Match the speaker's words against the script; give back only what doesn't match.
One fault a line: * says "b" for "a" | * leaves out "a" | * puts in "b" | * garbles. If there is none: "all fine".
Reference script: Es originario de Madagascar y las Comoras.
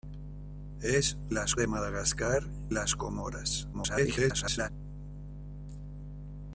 * says "las" for "originario"
* leaves out "y"
* garbles